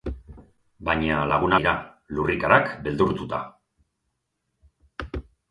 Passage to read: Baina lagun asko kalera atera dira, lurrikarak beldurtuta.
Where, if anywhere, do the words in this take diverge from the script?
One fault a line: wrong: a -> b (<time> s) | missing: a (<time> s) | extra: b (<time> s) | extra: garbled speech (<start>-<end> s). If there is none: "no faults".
missing: asko kalera atera (1.5 s)